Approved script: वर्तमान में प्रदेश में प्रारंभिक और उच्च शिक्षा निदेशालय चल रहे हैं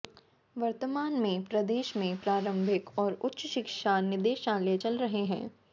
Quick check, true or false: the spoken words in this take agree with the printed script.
true